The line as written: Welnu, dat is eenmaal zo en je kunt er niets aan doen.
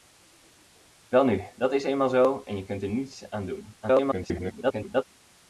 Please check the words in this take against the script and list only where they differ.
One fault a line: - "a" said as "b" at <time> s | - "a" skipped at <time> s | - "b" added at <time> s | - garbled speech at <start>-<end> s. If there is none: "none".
- garbled speech at 3.8-5.0 s